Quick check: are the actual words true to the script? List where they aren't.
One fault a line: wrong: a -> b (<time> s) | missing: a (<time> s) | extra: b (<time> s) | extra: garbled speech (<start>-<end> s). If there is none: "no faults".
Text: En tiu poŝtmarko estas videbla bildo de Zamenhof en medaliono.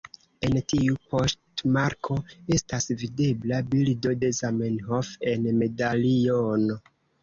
no faults